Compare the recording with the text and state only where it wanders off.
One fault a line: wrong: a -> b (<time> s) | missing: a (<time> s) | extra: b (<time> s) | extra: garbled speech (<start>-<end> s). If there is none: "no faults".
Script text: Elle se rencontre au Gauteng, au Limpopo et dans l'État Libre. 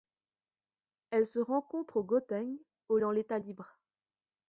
missing: Limpopo et (3.0 s)